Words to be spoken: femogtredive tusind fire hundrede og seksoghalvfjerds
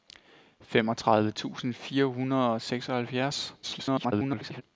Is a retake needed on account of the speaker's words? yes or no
yes